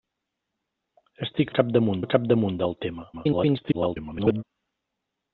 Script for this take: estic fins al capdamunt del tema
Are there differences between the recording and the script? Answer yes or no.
yes